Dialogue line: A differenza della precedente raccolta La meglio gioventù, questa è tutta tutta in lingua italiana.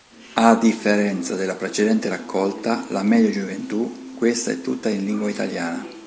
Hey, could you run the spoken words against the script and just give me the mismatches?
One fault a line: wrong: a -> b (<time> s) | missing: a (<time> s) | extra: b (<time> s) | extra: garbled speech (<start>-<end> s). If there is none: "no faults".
missing: tutta (4.9 s)